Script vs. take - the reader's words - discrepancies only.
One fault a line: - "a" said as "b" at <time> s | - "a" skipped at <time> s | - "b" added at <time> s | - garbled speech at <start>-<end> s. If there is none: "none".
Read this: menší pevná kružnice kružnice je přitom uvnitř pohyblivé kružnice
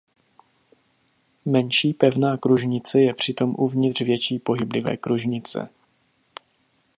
- "kružnice" skipped at 3.0 s
- "větší" added at 4.0 s